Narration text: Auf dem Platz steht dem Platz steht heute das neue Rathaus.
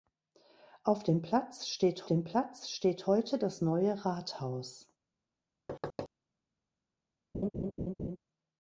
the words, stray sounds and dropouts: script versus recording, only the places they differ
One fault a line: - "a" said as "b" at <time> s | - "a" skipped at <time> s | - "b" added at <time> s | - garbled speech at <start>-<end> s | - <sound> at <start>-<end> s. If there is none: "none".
- thud at 5.7-6.1 s
- laugh at 7.3-8.2 s